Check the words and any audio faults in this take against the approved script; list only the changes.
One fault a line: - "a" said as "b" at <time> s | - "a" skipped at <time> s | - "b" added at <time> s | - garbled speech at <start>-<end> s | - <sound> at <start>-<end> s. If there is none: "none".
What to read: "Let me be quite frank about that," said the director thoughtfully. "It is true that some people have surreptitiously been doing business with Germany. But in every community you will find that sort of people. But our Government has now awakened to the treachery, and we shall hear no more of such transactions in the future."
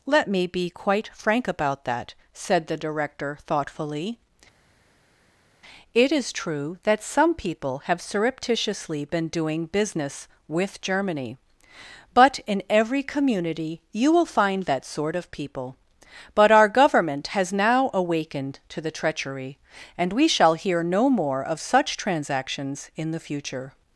none